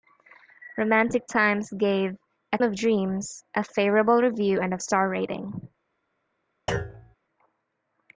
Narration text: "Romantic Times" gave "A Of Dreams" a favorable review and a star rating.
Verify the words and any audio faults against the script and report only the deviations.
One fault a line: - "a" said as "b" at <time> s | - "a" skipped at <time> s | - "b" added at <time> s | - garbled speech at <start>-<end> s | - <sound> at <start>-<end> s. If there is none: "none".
- thud at 6.7-7.2 s